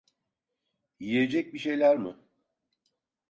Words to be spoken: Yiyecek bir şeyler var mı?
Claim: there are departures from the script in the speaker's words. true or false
true